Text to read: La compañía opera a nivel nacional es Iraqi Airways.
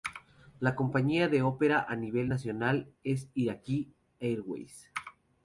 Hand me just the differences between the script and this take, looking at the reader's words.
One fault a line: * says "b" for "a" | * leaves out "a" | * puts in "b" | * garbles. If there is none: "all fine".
* puts in "que"